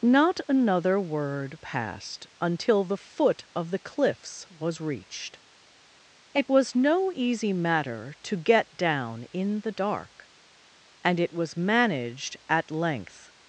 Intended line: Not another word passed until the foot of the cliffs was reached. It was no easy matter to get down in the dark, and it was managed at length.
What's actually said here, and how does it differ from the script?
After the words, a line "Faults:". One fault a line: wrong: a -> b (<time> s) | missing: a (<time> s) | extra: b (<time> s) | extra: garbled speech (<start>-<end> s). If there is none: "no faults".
Not another word passed until the foot of the cliffs was reached. It was no easy matter to get down in the dark, and it was managed at length.
Faults:
no faults